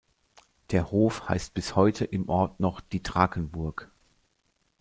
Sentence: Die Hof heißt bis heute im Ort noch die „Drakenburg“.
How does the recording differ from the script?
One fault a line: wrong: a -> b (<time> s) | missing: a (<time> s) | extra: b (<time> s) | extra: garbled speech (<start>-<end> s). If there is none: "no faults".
wrong: Die -> Der (0.7 s)